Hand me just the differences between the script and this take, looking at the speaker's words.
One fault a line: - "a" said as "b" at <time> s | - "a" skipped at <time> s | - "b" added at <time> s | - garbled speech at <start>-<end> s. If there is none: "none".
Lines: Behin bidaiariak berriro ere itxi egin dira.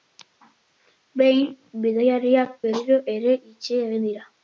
none